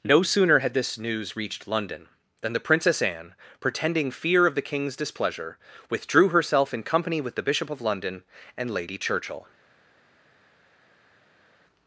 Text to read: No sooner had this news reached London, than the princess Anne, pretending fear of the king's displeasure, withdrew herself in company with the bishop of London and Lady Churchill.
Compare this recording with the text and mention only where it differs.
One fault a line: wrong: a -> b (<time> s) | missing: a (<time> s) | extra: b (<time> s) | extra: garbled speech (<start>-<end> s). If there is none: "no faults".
no faults